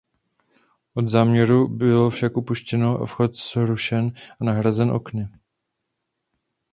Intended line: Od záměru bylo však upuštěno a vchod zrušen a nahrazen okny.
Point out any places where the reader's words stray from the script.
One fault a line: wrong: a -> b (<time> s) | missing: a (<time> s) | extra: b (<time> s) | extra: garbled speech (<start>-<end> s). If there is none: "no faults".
no faults